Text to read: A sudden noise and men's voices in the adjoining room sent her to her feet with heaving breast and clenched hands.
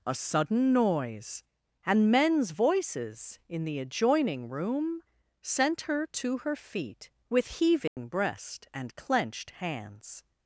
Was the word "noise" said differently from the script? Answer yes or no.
no